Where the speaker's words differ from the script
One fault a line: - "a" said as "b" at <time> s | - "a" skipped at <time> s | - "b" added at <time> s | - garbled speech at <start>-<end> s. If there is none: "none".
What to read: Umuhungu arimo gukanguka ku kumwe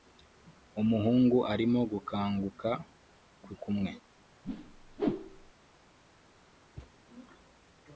none